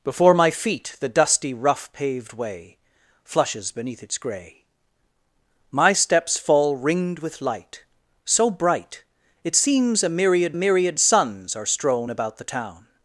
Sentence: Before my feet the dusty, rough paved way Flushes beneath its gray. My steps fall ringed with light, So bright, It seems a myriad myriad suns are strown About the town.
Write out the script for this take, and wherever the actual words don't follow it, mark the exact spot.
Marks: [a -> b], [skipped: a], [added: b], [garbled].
Before my feet the dusty, rough paved way Flushes beneath its gray. My steps fall ringed with light, So bright, It seems a myriad myriad suns are strown About the town.